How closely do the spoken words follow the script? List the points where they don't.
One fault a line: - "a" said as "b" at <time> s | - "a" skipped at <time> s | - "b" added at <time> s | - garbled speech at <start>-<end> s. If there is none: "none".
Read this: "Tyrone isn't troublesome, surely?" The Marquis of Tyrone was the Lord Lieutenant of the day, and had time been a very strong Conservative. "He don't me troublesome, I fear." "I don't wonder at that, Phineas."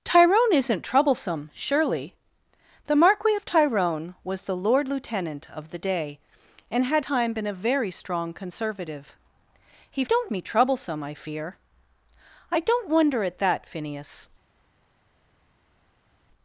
none